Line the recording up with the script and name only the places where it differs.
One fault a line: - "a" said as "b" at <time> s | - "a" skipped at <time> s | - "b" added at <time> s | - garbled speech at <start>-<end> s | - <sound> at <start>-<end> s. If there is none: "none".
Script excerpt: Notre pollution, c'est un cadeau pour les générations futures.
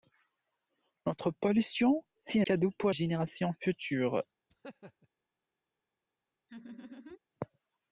- "un" skipped at 2.4 s
- "les" skipped at 2.9 s
- laugh at 4.5-5.1 s
- laugh at 6.5-7.2 s